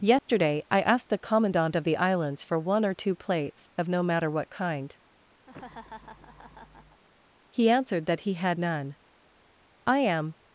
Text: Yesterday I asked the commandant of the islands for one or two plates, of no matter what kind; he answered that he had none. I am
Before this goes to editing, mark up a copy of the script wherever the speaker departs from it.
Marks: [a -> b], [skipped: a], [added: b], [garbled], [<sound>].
Yesterday [dropout] I asked the commandant of the islands for one or two plates, of no matter what kind; [laugh] he answered that he had none. I am